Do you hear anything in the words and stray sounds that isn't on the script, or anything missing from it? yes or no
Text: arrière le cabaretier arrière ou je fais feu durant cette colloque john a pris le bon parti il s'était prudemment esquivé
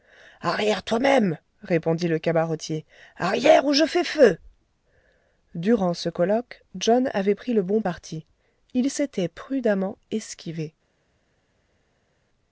yes